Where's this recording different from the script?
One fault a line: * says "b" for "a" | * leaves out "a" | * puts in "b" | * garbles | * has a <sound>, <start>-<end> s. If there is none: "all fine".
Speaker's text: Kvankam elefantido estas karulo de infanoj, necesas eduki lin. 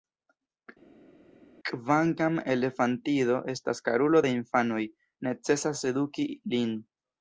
all fine